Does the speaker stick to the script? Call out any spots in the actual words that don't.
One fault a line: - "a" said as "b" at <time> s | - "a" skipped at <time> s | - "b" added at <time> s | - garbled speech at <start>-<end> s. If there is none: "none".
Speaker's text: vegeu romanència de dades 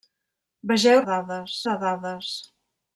- "romanència" said as "dades" at 1.1 s